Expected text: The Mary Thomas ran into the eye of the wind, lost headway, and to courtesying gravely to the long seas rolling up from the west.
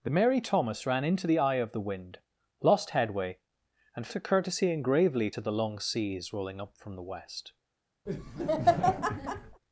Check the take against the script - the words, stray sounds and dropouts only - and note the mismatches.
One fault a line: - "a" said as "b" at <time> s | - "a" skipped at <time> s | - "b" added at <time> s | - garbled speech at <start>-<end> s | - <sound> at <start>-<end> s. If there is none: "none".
- laugh at 8.1-9.6 s